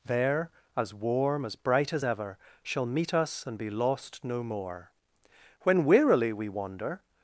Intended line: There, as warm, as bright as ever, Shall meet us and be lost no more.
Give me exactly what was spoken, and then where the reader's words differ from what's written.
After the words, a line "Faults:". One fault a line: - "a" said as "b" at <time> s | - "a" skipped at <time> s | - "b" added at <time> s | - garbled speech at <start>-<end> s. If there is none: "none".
There, as warm, as bright as ever, Shall meet us and be lost no more. When wearily we wander
Faults:
- "When wearily we wander" added at 5.6 s